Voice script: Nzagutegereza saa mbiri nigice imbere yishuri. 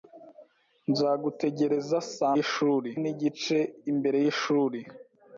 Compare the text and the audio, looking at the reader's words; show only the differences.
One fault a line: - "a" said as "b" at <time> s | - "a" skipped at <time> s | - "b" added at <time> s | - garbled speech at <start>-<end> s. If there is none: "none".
- "mbiri" said as "yishuri" at 2.4 s